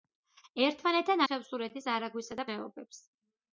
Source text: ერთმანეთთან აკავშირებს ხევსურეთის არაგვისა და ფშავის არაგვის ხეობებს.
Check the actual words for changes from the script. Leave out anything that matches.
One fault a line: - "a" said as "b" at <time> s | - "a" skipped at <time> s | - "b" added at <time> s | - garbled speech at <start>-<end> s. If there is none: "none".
- "აკავშირებს" skipped at 1.2 s
- "ფშავის არაგვის" skipped at 2.5 s